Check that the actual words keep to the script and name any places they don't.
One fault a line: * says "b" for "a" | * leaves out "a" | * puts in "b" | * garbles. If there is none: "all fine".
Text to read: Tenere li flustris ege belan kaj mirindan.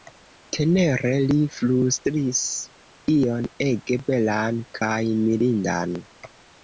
* puts in "ion"